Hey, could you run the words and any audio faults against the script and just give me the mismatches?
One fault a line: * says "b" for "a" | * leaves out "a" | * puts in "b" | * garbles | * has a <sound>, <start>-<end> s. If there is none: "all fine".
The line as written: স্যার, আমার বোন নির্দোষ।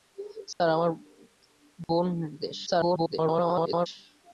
* has a dropout, 0.5-0.6 s
* has a dropout, 1.8-1.9 s
* garbles